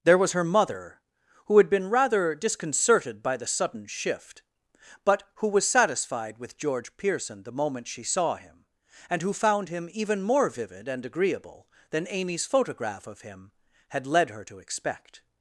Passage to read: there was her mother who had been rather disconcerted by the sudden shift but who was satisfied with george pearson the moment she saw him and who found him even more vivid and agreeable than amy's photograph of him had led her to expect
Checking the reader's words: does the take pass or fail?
pass